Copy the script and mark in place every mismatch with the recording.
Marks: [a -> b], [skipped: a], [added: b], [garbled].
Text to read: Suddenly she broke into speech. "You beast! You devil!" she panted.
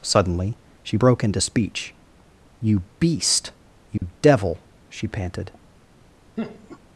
Suddenly she broke into speech. "You beast! You devil!" she panted.